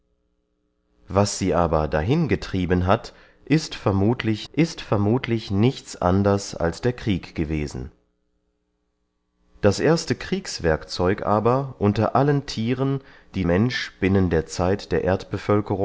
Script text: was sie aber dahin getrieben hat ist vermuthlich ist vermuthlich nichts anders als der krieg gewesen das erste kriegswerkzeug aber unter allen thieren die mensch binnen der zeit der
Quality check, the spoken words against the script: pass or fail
pass